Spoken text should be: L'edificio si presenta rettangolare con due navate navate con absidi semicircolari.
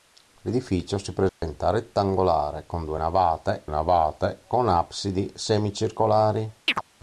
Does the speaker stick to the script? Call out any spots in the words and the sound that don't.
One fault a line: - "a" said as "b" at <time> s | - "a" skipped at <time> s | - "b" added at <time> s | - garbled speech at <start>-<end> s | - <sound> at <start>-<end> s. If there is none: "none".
- dropout at 1.3-1.4 s
- chirp at 6.7-6.8 s